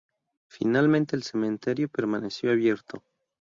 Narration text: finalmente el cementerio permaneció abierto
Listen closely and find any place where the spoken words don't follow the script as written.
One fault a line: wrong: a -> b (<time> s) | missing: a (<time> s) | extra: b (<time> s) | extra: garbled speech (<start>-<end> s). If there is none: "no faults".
no faults